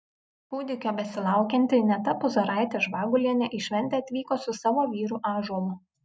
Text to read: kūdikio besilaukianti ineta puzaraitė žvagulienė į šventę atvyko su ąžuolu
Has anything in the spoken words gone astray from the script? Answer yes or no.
yes